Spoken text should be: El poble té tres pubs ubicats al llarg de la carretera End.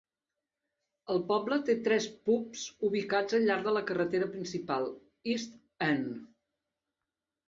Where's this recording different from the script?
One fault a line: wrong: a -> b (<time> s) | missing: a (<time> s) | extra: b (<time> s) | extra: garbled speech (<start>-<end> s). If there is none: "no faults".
extra: principal East (4.4 s)